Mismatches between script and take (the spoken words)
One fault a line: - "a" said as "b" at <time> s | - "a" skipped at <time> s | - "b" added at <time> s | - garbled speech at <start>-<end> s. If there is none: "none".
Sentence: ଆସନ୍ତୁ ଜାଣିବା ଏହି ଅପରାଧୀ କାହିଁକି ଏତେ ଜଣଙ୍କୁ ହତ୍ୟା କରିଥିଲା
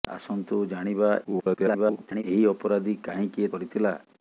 - garbled speech at 1.2-2.2 s
- "ଏତେ ଜଣଙ୍କୁ ହତ୍ୟା" skipped at 3.5 s